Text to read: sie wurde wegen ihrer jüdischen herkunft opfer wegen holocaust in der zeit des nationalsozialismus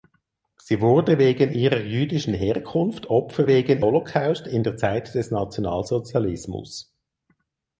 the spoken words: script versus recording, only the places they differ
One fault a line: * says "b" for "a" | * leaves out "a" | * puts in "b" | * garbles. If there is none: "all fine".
all fine